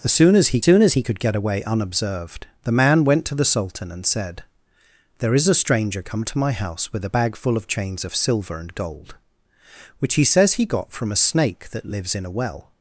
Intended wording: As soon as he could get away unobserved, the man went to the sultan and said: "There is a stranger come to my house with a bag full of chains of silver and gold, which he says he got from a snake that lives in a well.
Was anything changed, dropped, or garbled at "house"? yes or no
no